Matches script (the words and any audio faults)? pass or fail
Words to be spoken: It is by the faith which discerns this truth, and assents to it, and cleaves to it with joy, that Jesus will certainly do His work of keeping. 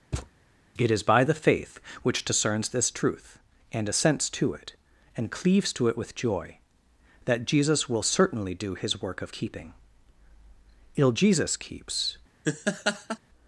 fail